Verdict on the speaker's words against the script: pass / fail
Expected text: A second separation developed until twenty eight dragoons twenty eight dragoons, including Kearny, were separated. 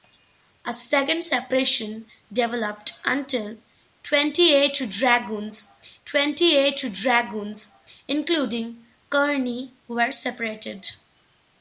pass